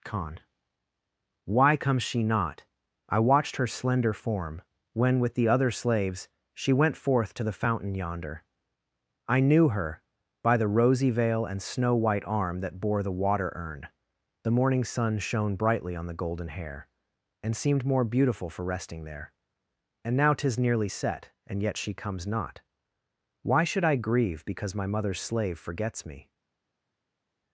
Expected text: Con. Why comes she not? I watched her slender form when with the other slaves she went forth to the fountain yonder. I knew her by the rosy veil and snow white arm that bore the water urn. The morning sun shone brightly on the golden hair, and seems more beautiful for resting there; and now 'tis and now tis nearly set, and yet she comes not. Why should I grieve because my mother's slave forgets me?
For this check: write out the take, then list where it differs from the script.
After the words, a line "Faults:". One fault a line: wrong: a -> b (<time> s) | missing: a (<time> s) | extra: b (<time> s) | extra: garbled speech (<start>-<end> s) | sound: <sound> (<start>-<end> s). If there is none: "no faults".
Con. Why comes she not? I watched her slender form when with the other slaves she went forth to the fountain yonder. I knew her by the rosy veil and snow white arm that bore the water urn. The morning sun shone brightly on the golden hair, and seemed more beautiful for resting there; and now 'tis nearly set, and yet she comes not. Why should I grieve because my mother's slave forgets me?
Faults:
wrong: seems -> seemed (17.6 s)
missing: and now tis (20.6 s)